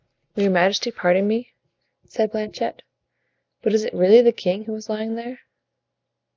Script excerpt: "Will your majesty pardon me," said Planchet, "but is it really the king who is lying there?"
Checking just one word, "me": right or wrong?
right